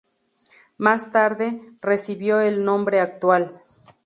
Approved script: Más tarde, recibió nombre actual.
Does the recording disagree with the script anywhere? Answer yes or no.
yes